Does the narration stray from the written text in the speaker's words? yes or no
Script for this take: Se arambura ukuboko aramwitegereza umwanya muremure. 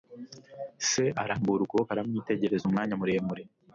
no